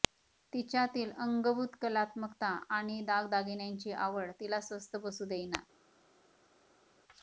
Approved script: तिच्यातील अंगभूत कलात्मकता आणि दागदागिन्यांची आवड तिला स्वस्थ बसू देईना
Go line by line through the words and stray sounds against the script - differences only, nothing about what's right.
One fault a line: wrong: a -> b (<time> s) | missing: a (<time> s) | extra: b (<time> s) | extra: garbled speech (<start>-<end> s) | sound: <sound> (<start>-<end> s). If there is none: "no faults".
no faults